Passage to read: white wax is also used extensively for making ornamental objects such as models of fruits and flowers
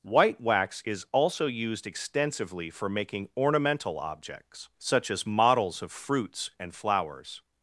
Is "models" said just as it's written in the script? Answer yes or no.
yes